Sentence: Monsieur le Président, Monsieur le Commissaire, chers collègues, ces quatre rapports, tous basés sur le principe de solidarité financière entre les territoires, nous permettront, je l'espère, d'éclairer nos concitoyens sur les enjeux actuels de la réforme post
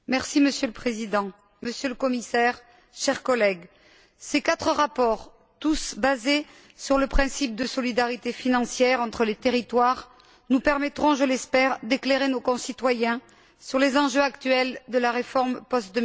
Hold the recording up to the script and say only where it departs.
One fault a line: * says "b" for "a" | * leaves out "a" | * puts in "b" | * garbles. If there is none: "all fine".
all fine